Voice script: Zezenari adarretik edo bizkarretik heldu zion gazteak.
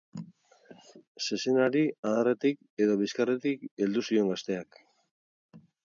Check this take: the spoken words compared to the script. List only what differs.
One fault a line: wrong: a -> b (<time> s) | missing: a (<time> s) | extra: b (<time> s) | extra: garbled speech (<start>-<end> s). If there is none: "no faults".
no faults